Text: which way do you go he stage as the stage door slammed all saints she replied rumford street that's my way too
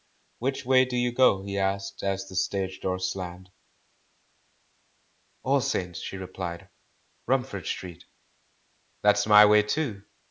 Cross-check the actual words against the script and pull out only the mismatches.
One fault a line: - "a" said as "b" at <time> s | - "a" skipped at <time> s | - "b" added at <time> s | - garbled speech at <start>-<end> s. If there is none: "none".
- "stage" said as "asked" at 1.6 s